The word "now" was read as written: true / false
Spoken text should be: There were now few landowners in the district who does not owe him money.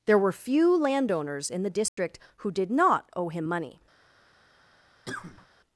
false